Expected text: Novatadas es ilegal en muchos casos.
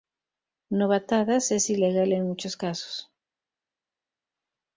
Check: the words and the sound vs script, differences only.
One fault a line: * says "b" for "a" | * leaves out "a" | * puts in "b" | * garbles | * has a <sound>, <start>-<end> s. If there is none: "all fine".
all fine